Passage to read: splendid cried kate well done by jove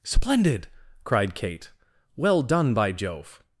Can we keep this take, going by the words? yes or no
yes